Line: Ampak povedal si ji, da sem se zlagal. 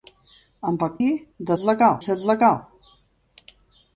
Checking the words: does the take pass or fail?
fail